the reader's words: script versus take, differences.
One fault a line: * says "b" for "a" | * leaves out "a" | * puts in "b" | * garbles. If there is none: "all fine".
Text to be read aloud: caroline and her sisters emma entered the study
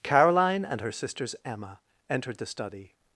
all fine